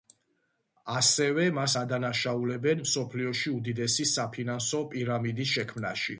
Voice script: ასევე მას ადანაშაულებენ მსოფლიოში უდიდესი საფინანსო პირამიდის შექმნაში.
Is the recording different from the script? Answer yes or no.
no